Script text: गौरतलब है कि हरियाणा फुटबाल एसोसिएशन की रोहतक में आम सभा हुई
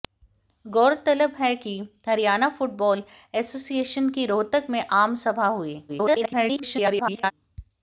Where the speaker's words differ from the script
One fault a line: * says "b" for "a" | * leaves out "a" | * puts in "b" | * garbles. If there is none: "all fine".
* garbles